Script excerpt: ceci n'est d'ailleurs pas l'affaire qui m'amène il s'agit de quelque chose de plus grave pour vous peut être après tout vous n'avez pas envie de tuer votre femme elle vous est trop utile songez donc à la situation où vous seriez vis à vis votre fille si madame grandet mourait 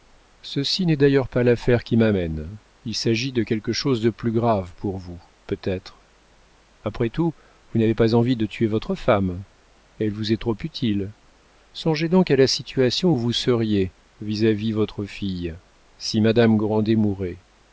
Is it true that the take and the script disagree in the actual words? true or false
false